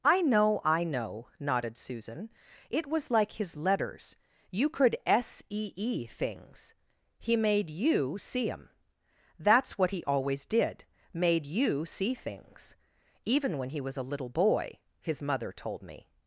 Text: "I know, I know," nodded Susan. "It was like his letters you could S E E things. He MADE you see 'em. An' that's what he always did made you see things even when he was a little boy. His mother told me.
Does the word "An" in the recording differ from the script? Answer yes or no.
yes